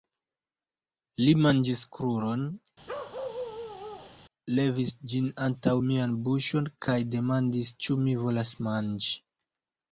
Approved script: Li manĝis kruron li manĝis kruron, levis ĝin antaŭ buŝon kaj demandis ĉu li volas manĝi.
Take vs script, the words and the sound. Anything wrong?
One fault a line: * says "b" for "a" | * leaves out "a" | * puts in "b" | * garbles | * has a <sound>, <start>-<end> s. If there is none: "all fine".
* leaves out "li manĝis kruron"
* has a bark, 2.9-4.2 s
* puts in "mian"
* says "mi" for "li"